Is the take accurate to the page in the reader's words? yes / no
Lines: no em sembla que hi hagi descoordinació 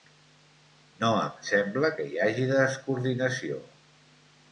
yes